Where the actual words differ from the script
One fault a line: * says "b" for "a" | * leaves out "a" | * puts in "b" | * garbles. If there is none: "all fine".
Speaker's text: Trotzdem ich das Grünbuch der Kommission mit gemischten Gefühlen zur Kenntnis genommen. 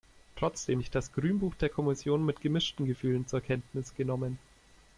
all fine